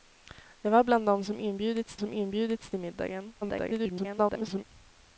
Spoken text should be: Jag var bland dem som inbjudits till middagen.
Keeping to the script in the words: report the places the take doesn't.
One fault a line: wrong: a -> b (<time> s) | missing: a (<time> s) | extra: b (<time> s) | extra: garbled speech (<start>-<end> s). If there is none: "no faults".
extra: som inbjudits (2.0 s)
extra: garbled speech (3.4-4.6 s)